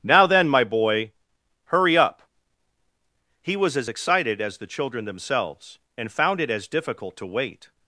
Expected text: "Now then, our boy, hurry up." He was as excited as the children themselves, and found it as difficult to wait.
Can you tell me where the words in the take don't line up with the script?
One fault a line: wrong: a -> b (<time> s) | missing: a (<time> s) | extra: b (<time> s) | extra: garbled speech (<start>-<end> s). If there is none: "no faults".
wrong: our -> my (0.5 s)